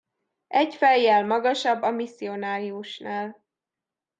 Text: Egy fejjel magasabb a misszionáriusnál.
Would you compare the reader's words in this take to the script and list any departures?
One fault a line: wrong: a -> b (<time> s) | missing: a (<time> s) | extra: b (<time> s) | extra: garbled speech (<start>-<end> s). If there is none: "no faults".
no faults